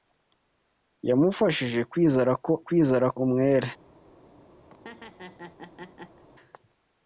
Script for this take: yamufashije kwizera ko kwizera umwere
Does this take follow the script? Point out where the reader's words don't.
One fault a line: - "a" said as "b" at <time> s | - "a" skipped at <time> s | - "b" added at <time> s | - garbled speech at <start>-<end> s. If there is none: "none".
none